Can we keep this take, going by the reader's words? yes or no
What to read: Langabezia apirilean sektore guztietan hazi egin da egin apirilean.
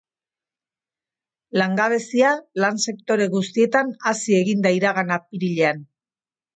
no